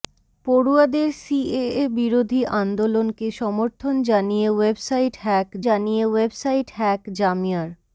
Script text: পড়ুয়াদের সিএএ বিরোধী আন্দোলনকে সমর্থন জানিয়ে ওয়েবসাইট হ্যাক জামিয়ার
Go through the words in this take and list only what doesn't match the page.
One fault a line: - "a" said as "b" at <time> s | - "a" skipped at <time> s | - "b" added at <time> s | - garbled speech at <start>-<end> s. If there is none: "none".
- "জানিয়ে ওয়েবসাইট হ্যাক" added at 5.7 s